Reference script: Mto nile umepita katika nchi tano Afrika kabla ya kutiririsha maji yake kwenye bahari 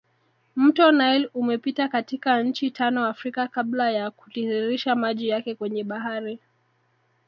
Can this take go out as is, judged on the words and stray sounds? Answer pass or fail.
pass